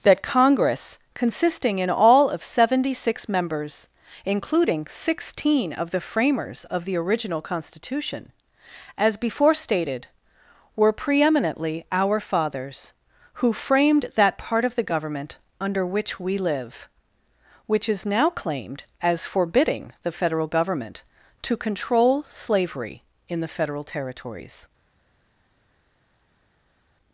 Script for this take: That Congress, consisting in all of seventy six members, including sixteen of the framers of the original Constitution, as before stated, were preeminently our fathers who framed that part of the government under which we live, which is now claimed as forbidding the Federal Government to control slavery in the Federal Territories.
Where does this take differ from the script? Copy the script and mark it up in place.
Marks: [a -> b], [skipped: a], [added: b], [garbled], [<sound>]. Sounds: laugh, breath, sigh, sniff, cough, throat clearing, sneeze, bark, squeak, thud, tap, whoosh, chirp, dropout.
That Congress, consisting in all of seventy six members, including sixteen of the framers of the original Constitution, as before stated, were preeminently our fathers who framed that part of the government under which we live, which is now claimed as forbidding the Federal Government to control slavery in the Federal Territories.